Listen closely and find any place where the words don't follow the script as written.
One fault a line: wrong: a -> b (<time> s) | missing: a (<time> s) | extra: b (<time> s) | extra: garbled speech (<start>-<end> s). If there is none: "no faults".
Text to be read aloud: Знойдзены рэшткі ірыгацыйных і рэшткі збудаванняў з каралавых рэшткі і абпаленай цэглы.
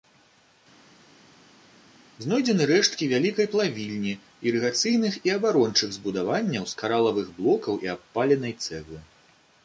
extra: вялікай плавільні (3.1 s)
wrong: рэшткі -> абарончых (5.4 s)
wrong: рэшткі -> блокаў (7.4 s)